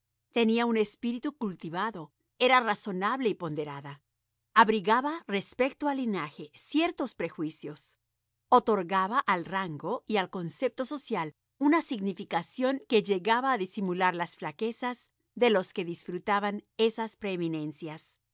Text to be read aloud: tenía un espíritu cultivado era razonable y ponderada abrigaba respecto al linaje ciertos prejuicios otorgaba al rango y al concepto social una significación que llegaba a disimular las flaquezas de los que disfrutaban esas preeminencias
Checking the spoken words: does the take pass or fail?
pass